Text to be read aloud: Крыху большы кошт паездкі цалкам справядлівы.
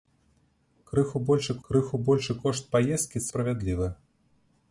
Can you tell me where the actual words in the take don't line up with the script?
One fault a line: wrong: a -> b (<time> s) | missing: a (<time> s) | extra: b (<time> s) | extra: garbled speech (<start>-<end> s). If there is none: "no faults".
extra: крыху большы (1.7 s)
missing: цалкам (3.3 s)